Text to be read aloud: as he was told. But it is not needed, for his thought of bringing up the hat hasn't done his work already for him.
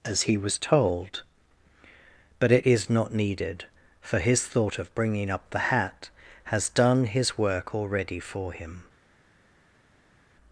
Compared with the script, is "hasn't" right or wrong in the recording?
wrong